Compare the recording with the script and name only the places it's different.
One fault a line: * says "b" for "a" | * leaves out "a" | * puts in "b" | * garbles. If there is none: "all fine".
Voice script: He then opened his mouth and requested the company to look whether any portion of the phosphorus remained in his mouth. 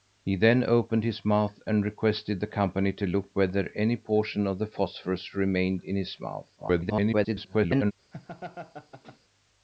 * garbles